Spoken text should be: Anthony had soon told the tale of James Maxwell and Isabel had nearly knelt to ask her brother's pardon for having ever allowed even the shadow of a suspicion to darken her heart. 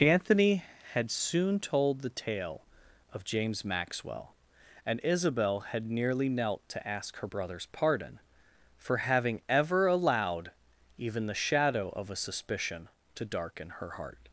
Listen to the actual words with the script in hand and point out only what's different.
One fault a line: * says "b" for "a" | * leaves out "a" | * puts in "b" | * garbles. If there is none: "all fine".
all fine